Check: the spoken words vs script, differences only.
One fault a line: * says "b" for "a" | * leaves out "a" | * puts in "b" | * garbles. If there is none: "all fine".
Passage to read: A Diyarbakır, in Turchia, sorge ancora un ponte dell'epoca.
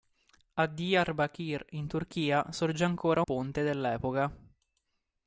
* leaves out "un"